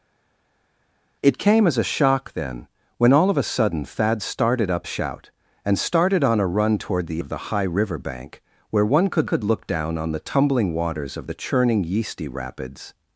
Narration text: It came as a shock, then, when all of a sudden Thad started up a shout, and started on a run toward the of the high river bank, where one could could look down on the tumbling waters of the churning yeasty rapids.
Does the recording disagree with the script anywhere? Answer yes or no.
no